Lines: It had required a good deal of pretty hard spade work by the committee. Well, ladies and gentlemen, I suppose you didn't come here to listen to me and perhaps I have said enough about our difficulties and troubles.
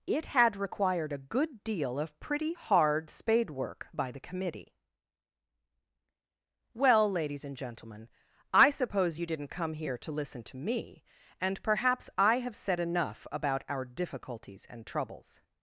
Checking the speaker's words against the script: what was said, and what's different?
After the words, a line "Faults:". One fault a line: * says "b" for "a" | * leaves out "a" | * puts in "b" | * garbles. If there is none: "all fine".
It had required a good deal of pretty hard spade work by the committee. Well, ladies and gentlemen, I suppose you didn't come here to listen to me and perhaps I have said enough about our difficulties and troubles.
Faults:
all fine